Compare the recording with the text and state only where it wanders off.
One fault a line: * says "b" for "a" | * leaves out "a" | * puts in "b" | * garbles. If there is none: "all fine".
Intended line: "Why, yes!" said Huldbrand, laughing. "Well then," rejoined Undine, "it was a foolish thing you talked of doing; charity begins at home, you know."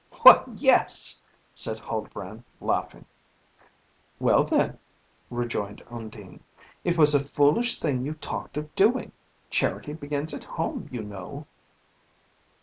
all fine